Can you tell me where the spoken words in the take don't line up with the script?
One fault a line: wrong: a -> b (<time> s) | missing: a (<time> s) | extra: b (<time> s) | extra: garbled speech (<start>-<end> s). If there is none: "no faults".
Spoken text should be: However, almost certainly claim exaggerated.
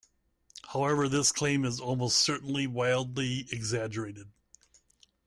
extra: this claim is (1.1 s)
wrong: claim -> wildly (2.7 s)